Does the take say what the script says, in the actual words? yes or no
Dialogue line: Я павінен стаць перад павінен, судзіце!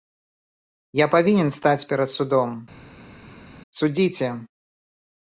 no